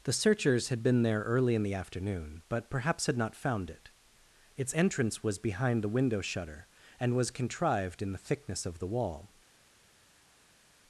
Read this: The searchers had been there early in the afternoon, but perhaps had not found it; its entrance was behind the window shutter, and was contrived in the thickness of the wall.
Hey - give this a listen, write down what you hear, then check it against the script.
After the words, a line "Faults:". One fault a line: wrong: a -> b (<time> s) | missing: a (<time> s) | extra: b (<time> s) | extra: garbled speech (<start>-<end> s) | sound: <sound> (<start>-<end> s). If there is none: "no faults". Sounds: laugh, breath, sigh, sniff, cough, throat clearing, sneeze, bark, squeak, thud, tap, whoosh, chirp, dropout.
The searchers had been there early in the afternoon, but perhaps had not found it; its entrance was behind the window shutter, and was contrived in the thickness of the wall.
Faults:
no faults